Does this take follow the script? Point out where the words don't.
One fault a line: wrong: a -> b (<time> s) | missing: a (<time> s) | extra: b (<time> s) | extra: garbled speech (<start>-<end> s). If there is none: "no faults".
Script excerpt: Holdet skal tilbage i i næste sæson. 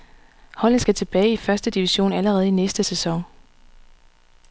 extra: første division allerede (1.4 s)